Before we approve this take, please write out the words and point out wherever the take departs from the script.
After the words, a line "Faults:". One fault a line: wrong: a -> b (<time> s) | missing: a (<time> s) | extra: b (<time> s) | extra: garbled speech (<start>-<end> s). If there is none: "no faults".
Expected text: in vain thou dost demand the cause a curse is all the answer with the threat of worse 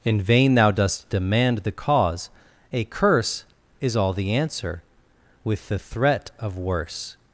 in vain thou dost demand the cause a curse is all the answer with the threat of worse
Faults:
no faults